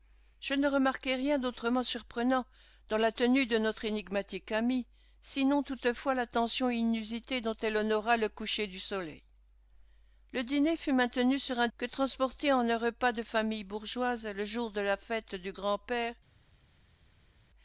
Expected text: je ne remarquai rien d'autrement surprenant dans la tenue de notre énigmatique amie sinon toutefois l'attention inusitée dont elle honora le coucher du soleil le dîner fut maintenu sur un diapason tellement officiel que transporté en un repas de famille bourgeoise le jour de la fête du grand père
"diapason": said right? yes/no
no